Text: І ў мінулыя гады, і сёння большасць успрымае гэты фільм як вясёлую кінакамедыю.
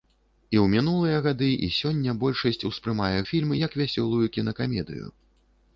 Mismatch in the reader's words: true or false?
true